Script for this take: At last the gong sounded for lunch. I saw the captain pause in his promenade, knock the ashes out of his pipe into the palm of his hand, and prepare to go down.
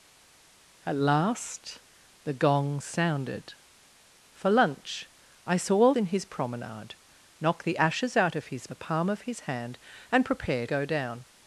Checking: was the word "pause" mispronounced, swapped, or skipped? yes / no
yes